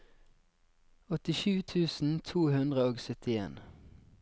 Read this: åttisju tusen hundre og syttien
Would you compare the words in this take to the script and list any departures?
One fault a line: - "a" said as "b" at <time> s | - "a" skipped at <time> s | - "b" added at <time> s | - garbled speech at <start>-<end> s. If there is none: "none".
- "to" added at 2.3 s